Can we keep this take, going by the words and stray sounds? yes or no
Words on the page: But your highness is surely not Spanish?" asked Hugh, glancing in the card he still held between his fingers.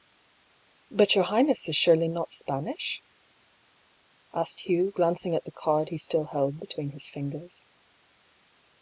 no